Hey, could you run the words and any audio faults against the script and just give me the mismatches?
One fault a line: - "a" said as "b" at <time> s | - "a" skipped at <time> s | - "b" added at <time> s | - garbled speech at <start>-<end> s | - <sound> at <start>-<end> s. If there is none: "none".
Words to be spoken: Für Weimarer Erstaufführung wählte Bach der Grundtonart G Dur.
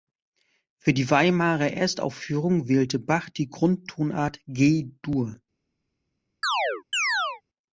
- "die" added at 0.9 s
- "der" said as "die" at 3.3 s
- chirp at 6.4-7.4 s